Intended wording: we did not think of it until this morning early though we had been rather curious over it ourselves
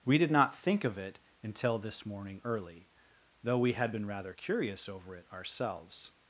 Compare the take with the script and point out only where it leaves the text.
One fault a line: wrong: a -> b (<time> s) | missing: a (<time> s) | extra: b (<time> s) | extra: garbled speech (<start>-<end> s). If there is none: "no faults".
no faults